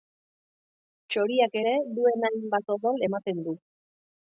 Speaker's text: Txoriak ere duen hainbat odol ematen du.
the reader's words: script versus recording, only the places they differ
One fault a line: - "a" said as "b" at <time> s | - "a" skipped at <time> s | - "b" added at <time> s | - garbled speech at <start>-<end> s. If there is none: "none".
none